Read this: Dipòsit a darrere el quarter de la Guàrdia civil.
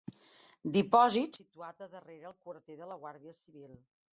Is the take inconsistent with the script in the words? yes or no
yes